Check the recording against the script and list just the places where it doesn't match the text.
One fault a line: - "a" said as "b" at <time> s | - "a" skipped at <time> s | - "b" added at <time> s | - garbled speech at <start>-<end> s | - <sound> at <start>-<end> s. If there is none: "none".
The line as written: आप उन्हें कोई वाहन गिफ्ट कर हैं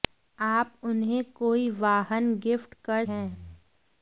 none